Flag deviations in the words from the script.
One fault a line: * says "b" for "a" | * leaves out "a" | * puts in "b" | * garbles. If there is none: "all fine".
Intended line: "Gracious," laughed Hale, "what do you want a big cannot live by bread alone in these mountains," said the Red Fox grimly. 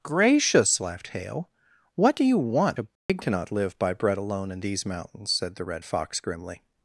all fine